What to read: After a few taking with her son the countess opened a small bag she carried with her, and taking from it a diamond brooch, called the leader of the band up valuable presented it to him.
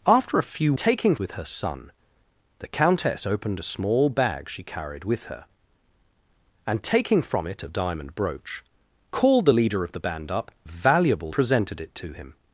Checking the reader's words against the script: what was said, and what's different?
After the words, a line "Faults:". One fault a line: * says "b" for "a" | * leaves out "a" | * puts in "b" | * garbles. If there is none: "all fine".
After a few taking with her son the countess opened a small bag she carried with her, and taking from it a diamond brooch, called the leader of the band up valuable presented it to him.
Faults:
all fine